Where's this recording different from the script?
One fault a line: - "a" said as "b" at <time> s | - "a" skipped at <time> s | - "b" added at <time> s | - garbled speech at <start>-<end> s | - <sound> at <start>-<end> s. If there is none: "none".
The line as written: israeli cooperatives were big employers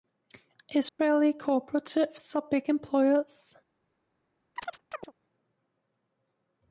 - dropout at 0.9-1.0 s
- "were" said as "are" at 2.4 s
- chirp at 4.6-5.1 s